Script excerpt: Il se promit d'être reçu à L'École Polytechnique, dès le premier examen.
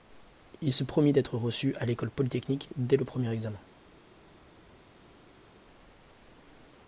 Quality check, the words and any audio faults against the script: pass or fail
pass